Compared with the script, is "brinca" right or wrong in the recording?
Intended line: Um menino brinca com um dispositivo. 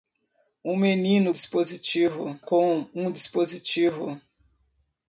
wrong